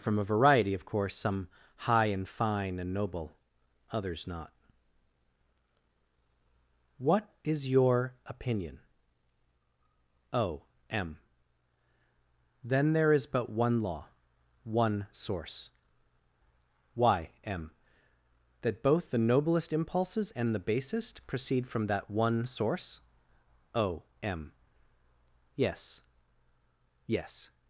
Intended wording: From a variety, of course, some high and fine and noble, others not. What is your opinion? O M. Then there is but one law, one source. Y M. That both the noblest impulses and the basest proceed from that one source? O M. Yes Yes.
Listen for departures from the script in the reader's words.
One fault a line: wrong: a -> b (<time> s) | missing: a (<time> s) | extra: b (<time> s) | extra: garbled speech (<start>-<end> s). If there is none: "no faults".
no faults